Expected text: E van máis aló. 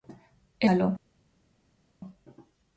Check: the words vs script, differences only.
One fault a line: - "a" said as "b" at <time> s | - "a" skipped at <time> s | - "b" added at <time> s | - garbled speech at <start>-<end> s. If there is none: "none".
- "van máis" skipped at 0.7 s